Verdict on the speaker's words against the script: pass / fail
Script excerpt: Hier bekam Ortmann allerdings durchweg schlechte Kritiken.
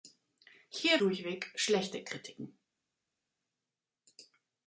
fail